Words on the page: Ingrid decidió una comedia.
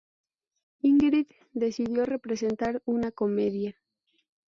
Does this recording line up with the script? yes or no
no